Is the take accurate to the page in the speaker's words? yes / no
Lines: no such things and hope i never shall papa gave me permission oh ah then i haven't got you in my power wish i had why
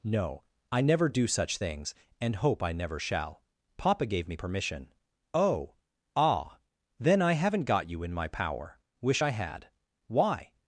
no